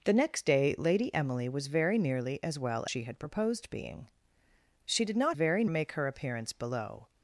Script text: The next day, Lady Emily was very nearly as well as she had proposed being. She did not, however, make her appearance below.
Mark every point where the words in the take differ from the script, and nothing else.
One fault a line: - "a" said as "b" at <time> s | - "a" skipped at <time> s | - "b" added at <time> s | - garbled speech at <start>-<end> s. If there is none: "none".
- "as" skipped at 2.8 s
- "however" said as "very" at 5.3 s